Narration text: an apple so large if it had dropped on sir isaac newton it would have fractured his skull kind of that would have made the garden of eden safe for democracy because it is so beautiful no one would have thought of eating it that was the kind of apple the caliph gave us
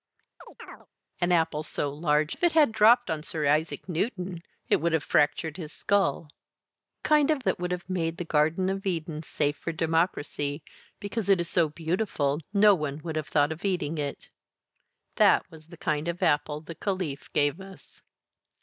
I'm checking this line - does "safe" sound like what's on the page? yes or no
yes